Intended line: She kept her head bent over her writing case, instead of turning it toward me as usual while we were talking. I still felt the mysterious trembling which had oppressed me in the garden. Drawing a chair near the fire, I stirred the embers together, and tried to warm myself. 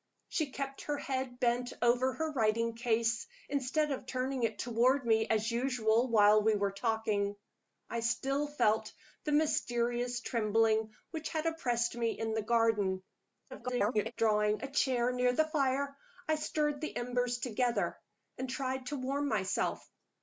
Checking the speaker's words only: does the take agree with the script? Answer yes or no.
no